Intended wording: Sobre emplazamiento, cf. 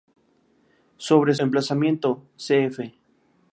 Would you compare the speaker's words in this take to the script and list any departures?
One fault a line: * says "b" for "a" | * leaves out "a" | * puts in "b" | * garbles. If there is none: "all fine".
all fine